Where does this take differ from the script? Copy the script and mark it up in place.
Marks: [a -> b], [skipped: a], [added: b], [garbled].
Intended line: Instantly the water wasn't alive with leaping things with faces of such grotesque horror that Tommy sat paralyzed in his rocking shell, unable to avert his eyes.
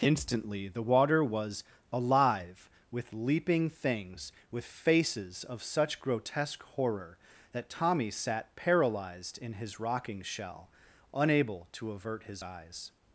Instantly the water [wasn't -> was] alive with leaping things with faces of such grotesque horror that Tommy sat paralyzed in his rocking shell, unable to avert his eyes.